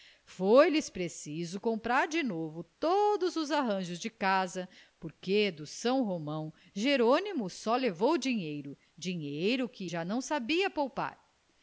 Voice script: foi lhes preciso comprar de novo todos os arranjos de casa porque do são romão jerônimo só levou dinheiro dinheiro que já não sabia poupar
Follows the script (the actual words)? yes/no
yes